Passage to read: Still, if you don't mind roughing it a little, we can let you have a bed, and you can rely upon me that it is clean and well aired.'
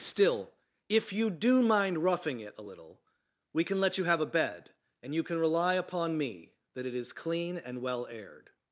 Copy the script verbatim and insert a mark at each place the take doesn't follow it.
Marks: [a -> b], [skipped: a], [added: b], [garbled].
Still, if you [don't -> do] mind roughing it a little, we can let you have a bed, and you can rely upon me that it is clean and well aired.'